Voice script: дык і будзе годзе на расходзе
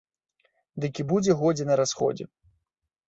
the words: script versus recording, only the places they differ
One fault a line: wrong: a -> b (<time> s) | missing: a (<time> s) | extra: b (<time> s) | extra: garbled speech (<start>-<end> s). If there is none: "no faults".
no faults